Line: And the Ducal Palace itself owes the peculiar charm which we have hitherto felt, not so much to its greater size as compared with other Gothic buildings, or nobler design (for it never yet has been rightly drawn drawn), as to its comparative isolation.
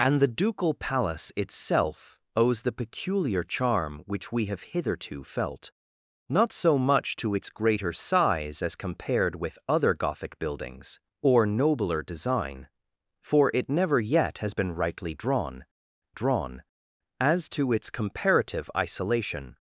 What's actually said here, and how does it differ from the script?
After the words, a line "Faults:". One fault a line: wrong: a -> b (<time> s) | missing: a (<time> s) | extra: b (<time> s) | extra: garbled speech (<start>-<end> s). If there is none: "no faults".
And the Ducal Palace itself owes the peculiar charm which we have hitherto felt, not so much to its greater size as compared with other Gothic buildings, or nobler design (for it never yet has been rightly drawn drawn), as to its comparative isolation.
Faults:
no faults